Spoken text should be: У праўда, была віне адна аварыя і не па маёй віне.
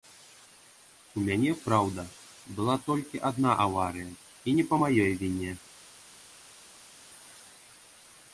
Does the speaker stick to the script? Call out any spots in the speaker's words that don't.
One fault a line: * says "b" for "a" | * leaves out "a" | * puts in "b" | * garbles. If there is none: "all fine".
* puts in "мяне"
* says "толькі" for "віне"